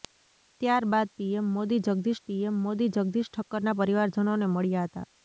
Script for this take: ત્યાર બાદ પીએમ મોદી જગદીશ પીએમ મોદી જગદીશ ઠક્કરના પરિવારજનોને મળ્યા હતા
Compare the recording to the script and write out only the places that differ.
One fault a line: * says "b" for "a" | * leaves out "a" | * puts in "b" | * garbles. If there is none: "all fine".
all fine